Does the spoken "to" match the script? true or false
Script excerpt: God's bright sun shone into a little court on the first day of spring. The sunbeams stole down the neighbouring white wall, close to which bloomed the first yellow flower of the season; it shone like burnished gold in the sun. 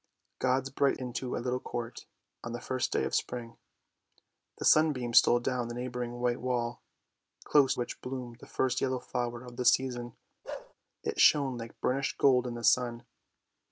false